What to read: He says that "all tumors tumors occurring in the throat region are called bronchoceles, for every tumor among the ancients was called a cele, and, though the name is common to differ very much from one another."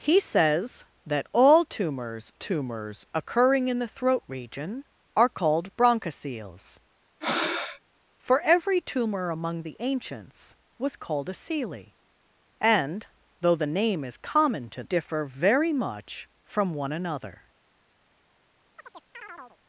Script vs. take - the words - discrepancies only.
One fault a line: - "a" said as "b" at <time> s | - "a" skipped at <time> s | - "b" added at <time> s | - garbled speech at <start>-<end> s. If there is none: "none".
none